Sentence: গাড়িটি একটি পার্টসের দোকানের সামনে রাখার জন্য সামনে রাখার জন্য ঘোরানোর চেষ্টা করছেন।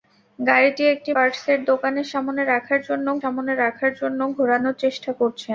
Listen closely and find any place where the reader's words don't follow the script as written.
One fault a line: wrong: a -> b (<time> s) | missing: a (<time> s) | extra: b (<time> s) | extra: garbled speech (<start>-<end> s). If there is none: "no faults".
no faults